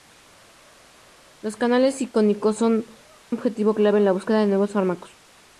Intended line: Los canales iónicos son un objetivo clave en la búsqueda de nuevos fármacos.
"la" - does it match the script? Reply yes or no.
yes